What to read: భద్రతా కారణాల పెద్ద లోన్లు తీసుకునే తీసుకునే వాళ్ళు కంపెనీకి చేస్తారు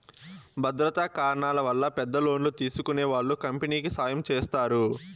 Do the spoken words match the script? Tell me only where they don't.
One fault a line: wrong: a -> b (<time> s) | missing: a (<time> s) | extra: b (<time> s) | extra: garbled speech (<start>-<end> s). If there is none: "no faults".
extra: వల్ల (1.6 s)
missing: తీసుకునే (3.0 s)
extra: సాయం (4.0 s)